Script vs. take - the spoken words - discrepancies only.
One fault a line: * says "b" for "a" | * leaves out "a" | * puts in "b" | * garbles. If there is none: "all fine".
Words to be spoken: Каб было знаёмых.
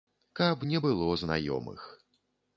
* puts in "не"